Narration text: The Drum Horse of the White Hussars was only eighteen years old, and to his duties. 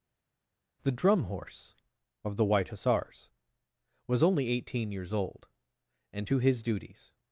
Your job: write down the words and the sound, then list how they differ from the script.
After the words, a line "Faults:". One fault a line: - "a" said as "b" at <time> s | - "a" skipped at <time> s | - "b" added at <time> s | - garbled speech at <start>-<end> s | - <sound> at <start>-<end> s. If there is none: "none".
The Drum Horse of the White Hussars was only eighteen years old, and to his duties.
Faults:
none